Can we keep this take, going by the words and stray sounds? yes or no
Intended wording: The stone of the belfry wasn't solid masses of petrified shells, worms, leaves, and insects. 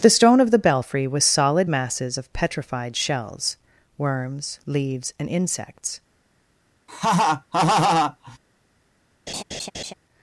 no